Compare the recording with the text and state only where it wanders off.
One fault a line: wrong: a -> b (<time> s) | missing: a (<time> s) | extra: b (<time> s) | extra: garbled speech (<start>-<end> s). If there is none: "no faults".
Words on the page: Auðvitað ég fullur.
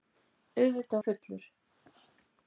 no faults